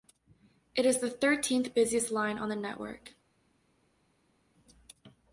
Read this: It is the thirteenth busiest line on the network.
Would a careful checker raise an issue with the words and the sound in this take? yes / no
no